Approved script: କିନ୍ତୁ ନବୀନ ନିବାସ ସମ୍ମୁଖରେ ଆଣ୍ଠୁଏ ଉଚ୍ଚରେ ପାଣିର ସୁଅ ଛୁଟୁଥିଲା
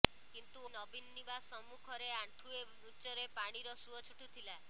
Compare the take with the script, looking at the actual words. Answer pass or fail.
pass